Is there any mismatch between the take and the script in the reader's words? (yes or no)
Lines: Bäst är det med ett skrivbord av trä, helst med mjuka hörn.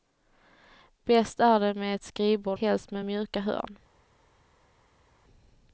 yes